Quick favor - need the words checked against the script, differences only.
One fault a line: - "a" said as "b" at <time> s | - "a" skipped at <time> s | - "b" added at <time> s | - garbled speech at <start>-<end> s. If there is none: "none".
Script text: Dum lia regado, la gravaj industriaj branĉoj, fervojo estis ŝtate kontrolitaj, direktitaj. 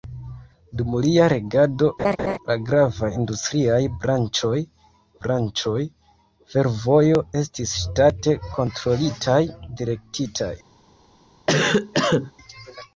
- "branĉoj" added at 5.3 s